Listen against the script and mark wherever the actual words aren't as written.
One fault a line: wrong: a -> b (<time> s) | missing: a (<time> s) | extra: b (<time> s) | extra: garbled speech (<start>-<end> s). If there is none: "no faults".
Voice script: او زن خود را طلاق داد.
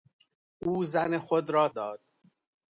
missing: طلاق (1.7 s)